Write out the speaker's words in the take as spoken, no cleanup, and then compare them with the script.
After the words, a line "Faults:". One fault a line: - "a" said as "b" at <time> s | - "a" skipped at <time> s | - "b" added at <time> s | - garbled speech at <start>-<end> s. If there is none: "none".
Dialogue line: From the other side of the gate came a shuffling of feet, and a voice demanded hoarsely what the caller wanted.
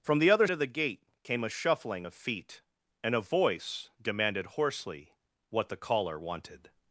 From the other of the gate came a shuffling of feet, and a voice demanded hoarsely what the caller wanted.
Faults:
- "side" skipped at 0.5 s